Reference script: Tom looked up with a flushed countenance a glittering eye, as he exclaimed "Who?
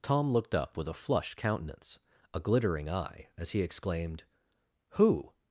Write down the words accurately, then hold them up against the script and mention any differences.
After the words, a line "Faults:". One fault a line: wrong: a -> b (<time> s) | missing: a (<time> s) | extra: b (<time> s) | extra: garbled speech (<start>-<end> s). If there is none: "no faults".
Tom looked up with a flushed countenance a glittering eye, as he exclaimed "Who?
Faults:
no faults